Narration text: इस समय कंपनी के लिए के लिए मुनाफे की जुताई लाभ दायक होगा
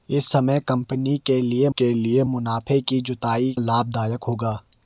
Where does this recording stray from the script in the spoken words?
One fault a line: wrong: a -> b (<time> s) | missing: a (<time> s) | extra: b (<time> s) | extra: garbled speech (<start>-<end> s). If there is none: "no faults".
no faults